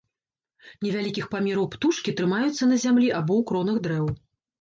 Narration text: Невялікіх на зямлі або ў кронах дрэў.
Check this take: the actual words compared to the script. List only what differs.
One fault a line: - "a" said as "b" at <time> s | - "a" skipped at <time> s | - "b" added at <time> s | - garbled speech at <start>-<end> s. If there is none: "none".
- "памераў птушкі трымаюцца" added at 1.3 s